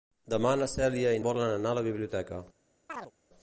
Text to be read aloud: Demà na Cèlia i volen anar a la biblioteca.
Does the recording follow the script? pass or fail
pass